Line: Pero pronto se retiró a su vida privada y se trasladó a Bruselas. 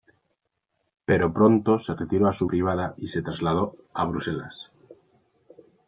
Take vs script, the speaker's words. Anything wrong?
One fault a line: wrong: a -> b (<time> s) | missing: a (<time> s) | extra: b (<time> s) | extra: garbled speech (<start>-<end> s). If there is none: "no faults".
missing: vida (2.5 s)